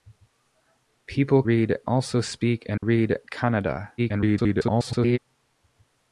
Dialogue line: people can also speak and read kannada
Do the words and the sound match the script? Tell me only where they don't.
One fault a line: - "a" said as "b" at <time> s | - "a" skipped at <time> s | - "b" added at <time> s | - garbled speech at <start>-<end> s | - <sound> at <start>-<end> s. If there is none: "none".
- "can" said as "read" at 1.5 s
- dropout at 2.8-2.8 s
- garbled speech at 4.0-5.2 s